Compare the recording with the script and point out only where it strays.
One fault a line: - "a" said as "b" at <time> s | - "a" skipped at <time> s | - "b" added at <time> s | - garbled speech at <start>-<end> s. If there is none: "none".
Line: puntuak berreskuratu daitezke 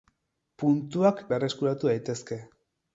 none